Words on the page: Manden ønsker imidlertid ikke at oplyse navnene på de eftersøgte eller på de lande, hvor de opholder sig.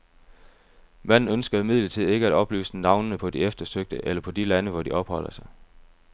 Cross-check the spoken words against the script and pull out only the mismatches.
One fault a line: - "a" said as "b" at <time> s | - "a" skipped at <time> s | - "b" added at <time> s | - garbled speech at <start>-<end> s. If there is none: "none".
none